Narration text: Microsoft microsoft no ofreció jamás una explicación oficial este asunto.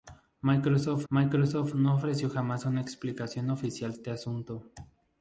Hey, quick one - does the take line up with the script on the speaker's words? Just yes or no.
yes